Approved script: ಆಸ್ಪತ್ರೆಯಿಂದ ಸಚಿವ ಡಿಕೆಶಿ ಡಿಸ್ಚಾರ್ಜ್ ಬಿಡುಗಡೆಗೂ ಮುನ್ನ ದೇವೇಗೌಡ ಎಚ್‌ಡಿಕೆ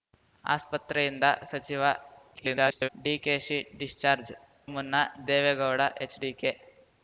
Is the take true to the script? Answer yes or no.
no